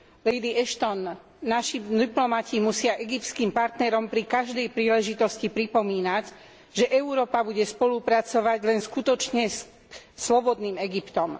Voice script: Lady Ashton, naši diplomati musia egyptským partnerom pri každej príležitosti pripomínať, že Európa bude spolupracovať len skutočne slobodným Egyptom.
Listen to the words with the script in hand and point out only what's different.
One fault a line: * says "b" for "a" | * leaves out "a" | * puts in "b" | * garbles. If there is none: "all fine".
all fine